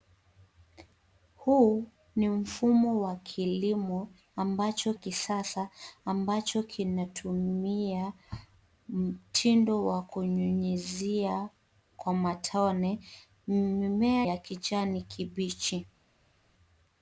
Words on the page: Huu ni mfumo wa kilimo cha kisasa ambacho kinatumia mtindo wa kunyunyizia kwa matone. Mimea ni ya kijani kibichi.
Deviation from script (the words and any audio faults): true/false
true